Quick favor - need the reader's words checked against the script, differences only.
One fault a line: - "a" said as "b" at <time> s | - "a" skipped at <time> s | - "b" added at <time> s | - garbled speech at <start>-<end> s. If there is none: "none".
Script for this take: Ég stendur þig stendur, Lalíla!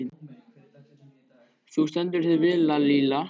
- "Ég" said as "Þú" at 1.7 s
- "stendur" said as "vel" at 2.4 s